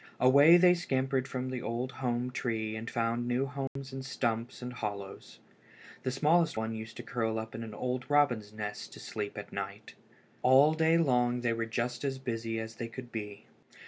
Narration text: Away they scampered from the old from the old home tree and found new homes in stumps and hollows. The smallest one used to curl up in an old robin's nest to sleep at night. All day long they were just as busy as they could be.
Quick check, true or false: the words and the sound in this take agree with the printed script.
false